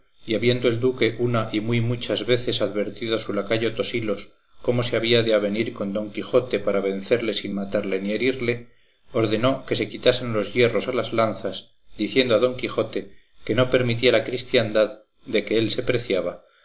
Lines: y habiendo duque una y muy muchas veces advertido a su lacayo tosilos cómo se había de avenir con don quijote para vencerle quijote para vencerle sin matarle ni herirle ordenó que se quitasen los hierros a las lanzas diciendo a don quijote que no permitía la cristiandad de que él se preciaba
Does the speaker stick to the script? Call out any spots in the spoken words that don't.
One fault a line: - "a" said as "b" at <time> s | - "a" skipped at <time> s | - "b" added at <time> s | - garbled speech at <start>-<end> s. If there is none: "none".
- "el" added at 0.7 s
- "quijote para vencerle" skipped at 7.3 s